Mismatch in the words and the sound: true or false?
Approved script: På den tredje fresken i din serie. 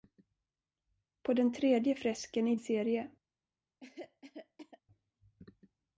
true